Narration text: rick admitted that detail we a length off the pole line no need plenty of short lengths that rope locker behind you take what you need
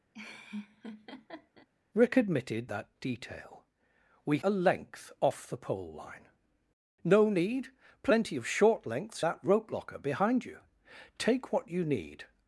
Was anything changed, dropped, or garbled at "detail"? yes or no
no